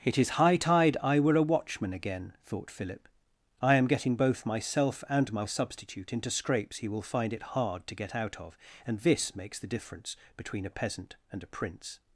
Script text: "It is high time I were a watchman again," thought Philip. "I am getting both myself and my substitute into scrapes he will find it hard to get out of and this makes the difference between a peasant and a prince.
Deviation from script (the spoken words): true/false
true